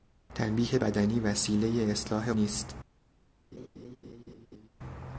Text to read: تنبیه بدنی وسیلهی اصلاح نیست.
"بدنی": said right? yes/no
yes